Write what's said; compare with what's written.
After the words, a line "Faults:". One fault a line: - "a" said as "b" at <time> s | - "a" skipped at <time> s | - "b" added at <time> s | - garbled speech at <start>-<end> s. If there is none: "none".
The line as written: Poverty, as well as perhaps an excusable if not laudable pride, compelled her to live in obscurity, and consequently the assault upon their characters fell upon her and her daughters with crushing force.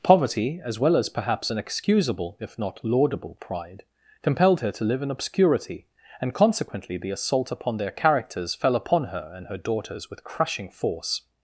Poverty, as well as perhaps an excusable if not laudable pride, compelled her to live in obscurity, and consequently the assault upon their characters fell upon her and her daughters with crushing force.
Faults:
none